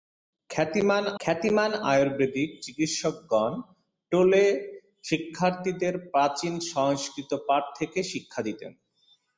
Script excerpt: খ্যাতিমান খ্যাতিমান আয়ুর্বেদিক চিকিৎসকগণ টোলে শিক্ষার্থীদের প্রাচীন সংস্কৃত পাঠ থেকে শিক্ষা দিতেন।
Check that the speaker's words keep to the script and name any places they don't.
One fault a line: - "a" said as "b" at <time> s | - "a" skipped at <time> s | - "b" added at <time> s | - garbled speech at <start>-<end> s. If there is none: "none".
none